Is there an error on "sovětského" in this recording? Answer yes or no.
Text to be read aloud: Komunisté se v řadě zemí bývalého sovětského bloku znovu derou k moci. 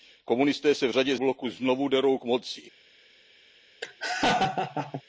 yes